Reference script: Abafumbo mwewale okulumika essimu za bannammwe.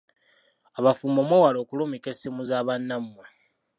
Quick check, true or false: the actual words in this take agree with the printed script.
true